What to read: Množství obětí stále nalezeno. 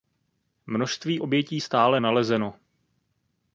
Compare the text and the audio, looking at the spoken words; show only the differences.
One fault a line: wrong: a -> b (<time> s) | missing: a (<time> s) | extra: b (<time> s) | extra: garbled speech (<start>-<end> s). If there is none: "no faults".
no faults